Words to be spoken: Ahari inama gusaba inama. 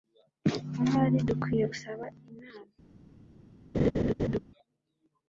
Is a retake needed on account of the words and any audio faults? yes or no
yes